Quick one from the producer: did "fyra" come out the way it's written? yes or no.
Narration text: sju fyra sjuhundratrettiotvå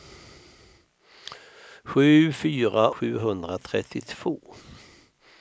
yes